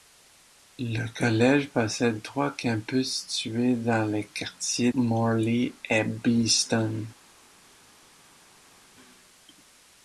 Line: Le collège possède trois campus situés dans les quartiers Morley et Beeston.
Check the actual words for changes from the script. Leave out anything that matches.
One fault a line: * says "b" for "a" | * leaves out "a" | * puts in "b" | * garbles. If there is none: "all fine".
all fine